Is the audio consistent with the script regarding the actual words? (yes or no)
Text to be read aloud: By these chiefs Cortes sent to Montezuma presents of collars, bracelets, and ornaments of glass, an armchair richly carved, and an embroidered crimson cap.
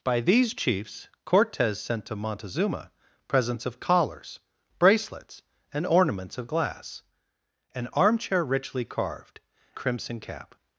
no